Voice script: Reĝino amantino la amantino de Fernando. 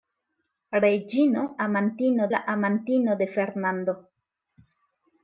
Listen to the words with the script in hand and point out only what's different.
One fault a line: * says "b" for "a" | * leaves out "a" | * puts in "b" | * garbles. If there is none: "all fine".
all fine